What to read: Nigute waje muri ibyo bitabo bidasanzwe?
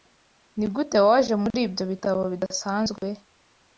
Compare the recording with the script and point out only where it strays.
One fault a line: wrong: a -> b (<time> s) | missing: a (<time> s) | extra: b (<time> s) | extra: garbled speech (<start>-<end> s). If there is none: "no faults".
no faults